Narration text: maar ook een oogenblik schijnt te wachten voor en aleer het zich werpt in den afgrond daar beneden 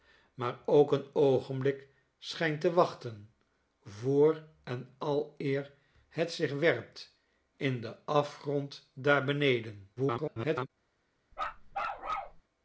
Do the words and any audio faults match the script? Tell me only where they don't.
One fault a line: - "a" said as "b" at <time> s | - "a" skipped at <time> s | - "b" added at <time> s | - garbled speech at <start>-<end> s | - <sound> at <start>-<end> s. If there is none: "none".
- garbled speech at 10.0-10.7 s
- bark at 11.3-12.4 s